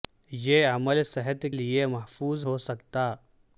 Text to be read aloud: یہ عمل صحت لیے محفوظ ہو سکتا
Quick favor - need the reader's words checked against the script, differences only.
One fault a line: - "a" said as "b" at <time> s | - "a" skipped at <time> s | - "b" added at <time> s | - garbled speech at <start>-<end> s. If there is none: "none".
none